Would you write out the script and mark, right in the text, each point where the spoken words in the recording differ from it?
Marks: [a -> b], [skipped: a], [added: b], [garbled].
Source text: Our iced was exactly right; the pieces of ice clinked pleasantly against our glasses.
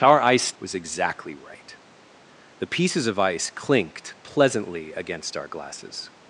Our iced was exactly right; the pieces of ice clinked pleasantly against our glasses.